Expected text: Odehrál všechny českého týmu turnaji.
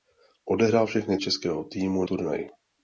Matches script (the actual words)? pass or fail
pass